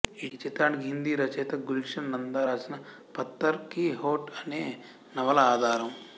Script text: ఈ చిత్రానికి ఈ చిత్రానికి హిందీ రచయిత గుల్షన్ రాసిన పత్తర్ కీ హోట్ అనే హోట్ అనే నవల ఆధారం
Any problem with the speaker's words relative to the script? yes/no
yes